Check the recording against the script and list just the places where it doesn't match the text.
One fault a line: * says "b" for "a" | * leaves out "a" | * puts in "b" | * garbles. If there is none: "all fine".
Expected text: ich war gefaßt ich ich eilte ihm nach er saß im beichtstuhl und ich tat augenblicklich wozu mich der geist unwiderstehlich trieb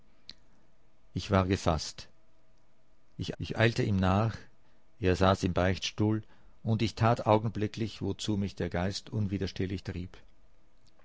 all fine